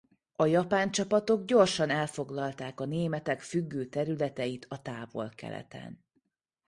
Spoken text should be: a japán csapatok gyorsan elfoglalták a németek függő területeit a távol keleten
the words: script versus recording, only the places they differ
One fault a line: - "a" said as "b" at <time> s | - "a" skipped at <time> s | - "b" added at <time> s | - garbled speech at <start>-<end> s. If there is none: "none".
none